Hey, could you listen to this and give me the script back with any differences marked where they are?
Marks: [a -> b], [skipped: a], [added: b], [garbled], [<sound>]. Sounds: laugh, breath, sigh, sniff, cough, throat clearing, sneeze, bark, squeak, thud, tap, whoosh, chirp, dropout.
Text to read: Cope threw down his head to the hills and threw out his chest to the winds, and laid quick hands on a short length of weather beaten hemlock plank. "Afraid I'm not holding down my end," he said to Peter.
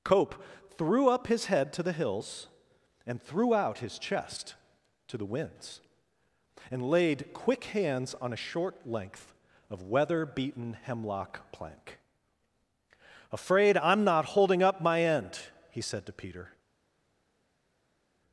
Cope threw [down -> up] his head to the hills and threw out his chest to the winds, and laid quick hands on a short length of weather beaten hemlock plank. "Afraid I'm not holding [down -> up] my end," he said to Peter.